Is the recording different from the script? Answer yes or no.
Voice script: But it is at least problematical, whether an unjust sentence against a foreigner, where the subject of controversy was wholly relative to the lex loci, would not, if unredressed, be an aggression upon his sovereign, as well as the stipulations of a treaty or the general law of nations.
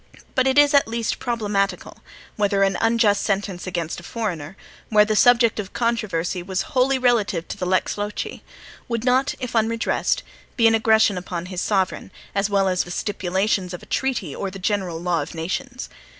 no